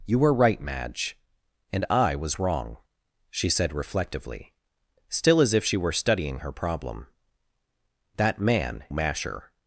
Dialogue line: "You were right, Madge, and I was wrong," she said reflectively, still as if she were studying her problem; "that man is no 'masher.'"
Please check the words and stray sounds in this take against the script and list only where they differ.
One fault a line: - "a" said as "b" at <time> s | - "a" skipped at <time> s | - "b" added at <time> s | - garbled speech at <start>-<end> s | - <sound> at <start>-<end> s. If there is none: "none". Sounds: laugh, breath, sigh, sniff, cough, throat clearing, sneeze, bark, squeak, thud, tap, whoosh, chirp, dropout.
- "is no" skipped at 8.8 s